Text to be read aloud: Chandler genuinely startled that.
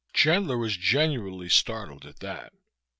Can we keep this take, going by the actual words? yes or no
no